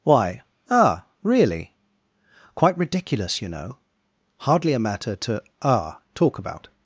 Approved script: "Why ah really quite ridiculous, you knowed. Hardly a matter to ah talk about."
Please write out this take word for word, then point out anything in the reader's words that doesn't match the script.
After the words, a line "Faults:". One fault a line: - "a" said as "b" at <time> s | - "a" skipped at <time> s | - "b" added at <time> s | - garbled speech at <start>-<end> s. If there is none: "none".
"Why ah really quite ridiculous, you know. Hardly a matter to ah talk about."
Faults:
- "knowed" said as "know" at 3.5 s